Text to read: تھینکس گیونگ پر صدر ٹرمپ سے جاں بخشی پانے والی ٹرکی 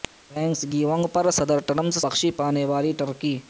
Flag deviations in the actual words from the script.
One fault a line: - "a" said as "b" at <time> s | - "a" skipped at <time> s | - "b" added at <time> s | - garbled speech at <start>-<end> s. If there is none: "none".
- "سے جاں" skipped at 1.9 s